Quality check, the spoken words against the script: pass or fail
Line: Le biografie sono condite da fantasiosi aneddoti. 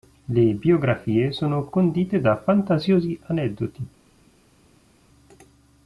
pass